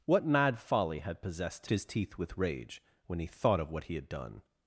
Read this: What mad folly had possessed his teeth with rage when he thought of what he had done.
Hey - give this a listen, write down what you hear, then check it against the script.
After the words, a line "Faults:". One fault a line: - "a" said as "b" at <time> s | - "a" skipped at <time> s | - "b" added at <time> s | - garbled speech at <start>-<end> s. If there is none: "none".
What mad folly had possessed his teeth with rage when he thought of what he had done.
Faults:
none